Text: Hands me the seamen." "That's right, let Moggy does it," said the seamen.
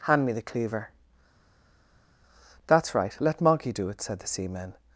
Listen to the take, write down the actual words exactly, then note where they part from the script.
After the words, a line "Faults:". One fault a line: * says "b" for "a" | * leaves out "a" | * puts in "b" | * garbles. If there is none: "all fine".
Hand me the cleaver." "That's right, let Moggy do it," said the seamen.
Faults:
* says "Hand" for "Hands"
* says "cleaver" for "seamen"
* says "do" for "does"